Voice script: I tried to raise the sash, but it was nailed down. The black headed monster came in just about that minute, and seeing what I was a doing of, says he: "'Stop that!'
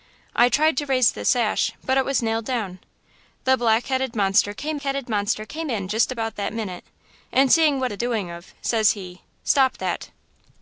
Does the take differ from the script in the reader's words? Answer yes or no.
yes